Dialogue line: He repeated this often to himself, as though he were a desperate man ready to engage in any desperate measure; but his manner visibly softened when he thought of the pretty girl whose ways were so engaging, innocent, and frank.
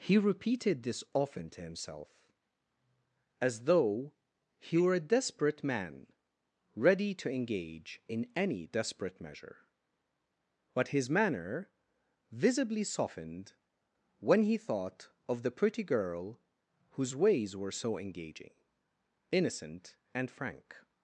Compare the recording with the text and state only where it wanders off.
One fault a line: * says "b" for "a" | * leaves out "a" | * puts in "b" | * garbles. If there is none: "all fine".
all fine